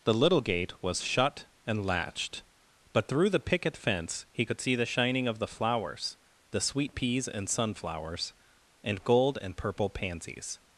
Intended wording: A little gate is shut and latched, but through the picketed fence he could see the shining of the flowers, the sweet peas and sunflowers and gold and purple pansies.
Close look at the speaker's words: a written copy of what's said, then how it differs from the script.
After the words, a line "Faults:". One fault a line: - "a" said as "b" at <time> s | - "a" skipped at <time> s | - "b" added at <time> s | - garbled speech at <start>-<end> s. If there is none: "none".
The little gate was shut and latched, but through the picket fence he could see the shining of the flowers, the sweet peas and sunflowers and gold and purple pansies.
Faults:
- "A" said as "The" at 0.0 s
- "is" said as "was" at 0.8 s
- "picketed" said as "picket" at 3.4 s